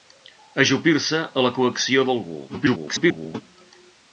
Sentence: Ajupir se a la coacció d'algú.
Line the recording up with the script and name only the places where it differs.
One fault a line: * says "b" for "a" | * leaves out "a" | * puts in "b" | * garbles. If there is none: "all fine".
* garbles